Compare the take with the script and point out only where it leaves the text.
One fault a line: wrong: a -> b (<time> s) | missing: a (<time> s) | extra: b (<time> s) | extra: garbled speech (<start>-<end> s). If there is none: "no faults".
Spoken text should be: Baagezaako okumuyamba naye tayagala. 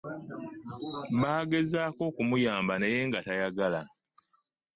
extra: nga (3.1 s)